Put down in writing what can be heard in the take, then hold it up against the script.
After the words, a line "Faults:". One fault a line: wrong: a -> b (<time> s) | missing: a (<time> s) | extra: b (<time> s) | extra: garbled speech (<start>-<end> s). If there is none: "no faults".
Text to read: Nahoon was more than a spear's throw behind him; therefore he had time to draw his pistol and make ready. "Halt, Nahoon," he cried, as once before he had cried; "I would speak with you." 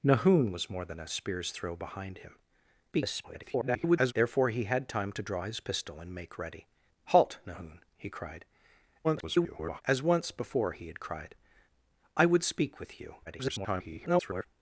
Nahoon was more than a spear's throw behind him; [garbled] therefore he had time to draw his pistol and make ready. "Halt, Nahoon," he cried, [garbled] as once before he had cried; "I would speak with you." [garbled]
Faults:
extra: garbled speech (2.9-4.1 s)
extra: garbled speech (9.0-9.8 s)
extra: garbled speech (13.3-14.5 s)